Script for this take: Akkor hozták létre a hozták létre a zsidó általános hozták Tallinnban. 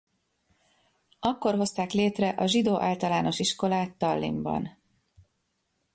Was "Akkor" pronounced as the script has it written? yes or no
yes